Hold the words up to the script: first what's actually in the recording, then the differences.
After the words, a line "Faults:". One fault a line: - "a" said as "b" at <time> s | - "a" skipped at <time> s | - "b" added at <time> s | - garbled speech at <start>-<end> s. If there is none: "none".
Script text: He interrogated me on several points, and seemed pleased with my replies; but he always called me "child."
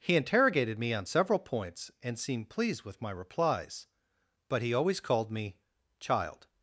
He interrogated me on several points, and seemed pleased with my replies; but he always called me "child."
Faults:
none